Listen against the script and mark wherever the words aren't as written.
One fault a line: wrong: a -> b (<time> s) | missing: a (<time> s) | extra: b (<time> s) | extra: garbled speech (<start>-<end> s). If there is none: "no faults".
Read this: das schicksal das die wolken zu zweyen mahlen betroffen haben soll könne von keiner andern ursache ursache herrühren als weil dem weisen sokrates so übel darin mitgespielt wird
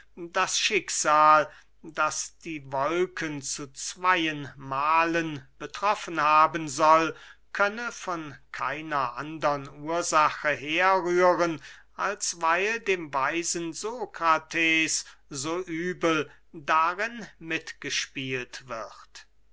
missing: ursache (10.5 s)